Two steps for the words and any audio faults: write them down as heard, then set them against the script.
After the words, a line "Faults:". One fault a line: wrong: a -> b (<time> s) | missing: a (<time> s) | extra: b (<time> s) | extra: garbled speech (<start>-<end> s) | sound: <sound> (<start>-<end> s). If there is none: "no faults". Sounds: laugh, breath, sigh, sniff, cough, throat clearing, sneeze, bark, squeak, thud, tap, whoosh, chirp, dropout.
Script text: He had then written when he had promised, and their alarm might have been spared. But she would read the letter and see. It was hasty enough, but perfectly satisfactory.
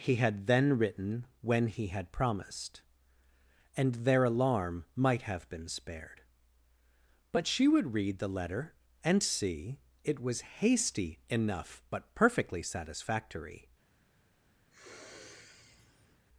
He had then written when he had promised, and their alarm might have been spared. But she would read the letter and see. It was hasty enough, but perfectly satisfactory.
Faults:
sound: sniff (14.7-16.2 s)